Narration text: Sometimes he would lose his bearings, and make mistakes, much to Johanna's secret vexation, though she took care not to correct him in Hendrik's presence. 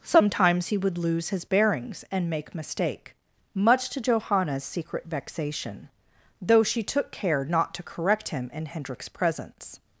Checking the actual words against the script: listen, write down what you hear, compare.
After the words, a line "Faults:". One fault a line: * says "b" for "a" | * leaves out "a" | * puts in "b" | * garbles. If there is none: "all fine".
Sometimes he would lose his bearings, and make mistake, much to Johanna's secret vexation, though she took care not to correct him in Hendrik's presence.
Faults:
* says "mistake" for "mistakes"